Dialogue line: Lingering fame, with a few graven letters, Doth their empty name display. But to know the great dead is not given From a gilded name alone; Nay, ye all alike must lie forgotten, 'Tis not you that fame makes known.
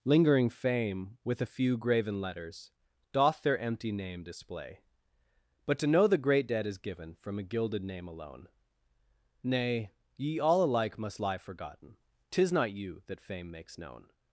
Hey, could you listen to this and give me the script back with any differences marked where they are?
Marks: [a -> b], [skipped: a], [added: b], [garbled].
Lingering fame, with a few graven letters, Doth their empty name display. But to know the great dead is [skipped: not] given From a gilded name alone; Nay, ye all alike must lie forgotten, 'Tis not you that fame makes known.